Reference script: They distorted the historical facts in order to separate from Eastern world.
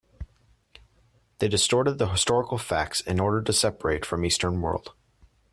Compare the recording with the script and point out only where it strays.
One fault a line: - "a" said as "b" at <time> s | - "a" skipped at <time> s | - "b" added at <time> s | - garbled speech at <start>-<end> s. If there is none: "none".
none